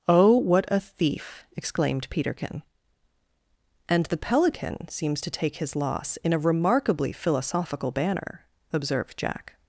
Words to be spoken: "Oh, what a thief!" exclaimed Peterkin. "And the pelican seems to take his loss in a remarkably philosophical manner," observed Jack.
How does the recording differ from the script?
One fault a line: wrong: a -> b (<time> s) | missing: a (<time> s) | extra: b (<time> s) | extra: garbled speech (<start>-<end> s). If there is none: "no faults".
wrong: manner -> banner (7.9 s)